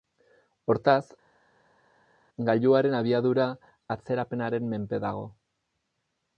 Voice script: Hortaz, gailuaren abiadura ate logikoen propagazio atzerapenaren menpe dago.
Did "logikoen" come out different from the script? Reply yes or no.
yes